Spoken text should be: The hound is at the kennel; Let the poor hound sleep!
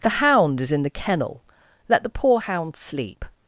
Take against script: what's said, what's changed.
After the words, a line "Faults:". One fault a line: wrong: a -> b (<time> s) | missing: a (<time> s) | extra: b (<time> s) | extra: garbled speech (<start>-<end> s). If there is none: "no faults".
The hound is in the kennel; Let the poor hound sleep!
Faults:
wrong: at -> in (0.7 s)